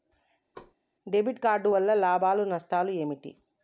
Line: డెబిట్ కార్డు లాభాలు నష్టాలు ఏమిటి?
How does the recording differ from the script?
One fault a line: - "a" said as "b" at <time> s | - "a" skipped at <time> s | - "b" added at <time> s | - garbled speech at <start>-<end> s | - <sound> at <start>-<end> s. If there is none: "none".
- thud at 0.5-0.7 s
- "వల్ల" added at 1.7 s